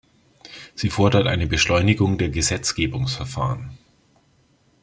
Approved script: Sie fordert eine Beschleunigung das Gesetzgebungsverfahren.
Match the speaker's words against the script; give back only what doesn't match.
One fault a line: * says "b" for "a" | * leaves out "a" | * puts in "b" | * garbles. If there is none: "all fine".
* says "der" for "das"